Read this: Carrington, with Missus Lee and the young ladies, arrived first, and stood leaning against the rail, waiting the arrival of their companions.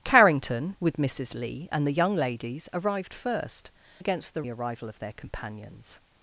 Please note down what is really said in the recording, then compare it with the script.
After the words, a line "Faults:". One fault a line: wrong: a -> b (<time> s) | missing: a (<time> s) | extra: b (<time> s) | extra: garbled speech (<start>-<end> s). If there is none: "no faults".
Carrington, with Missus Lee and the young ladies, arrived first, against the the arrival of their companions.
Faults:
missing: and stood leaning (3.7 s)
missing: rail waiting (4.4 s)